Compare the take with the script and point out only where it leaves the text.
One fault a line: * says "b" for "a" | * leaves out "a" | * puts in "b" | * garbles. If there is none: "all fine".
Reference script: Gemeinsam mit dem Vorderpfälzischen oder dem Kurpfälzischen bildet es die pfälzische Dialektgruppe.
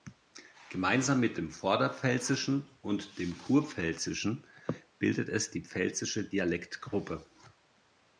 * says "und" for "oder"